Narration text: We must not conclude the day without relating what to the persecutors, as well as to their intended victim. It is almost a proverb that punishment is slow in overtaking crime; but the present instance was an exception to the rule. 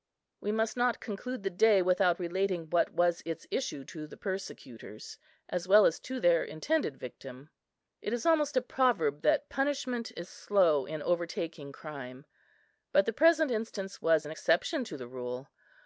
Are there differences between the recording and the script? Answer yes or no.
yes